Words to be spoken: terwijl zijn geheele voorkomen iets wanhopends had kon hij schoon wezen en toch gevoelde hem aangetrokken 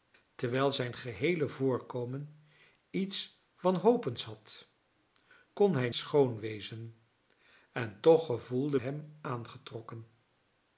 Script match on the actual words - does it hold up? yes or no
yes